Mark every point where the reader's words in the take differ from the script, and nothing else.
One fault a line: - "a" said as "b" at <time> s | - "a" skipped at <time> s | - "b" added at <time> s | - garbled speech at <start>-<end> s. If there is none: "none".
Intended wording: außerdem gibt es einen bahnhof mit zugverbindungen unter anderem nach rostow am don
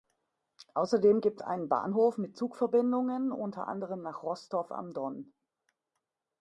- "es" skipped at 1.4 s